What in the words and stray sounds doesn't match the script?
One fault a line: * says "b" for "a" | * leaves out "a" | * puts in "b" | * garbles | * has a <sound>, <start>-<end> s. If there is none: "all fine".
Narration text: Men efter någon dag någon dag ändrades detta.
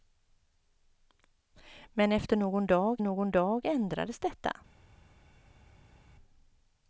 all fine